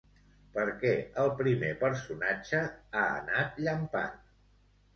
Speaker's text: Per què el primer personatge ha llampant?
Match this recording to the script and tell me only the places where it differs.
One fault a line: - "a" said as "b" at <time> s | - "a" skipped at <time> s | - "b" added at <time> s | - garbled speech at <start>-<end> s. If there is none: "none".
- "anat" added at 3.2 s